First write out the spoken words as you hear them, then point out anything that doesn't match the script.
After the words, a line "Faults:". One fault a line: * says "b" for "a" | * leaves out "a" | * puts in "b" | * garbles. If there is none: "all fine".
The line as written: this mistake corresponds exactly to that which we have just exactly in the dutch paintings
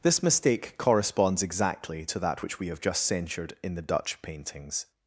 this mistake corresponds exactly to that which we have just censured in the dutch paintings
Faults:
* says "censured" for "exactly"